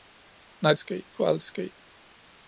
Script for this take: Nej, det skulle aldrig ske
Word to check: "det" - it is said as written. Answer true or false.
false